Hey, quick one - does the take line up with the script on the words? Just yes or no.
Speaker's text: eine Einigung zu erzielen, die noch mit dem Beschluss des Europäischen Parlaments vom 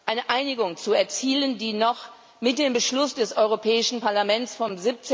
yes